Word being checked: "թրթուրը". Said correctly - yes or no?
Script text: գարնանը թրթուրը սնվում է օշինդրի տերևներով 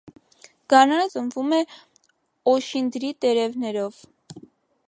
no